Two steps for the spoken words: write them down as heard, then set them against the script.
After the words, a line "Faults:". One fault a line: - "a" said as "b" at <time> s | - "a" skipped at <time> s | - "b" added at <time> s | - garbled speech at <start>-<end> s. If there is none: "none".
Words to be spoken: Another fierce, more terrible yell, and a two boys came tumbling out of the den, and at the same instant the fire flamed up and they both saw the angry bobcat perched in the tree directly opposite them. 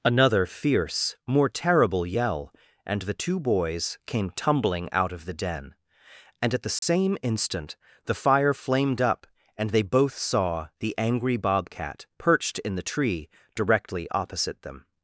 Another fierce, more terrible yell, and the two boys came tumbling out of the den, and at the same instant the fire flamed up and they both saw the angry bobcat perched in the tree directly opposite them.
Faults:
- "a" said as "the" at 3.0 s